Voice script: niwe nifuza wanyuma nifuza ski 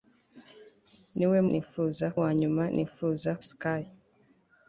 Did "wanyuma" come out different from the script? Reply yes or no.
no